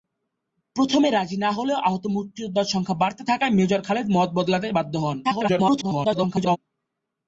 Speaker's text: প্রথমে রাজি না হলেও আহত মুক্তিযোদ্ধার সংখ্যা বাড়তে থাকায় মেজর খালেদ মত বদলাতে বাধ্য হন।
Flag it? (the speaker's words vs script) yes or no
yes